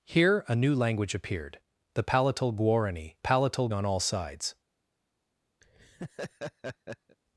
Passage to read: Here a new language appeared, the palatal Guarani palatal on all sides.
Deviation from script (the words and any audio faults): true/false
true